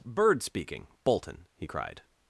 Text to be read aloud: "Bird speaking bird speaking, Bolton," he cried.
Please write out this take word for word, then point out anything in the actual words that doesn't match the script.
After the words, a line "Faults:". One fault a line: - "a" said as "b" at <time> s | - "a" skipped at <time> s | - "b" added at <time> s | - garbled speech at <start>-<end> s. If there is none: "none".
"Bird speaking, Bolton," he cried.
Faults:
- "bird speaking" skipped at 0.9 s